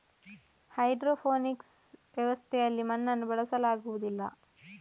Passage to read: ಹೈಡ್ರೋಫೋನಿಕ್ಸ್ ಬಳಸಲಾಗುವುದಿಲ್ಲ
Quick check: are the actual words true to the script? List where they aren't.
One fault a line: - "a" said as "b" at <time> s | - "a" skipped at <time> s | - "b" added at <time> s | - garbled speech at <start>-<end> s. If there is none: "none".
- "ವ್ಯವಸ್ಥೆಯಲ್ಲಿ ಮಣ್ಣನ್ನು" added at 2.2 s